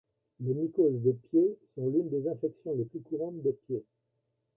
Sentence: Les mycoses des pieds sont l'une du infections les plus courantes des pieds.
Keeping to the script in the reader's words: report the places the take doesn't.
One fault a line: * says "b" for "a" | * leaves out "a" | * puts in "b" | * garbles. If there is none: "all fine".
* says "des" for "du"